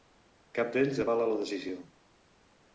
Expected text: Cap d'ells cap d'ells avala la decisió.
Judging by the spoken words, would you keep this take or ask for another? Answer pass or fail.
fail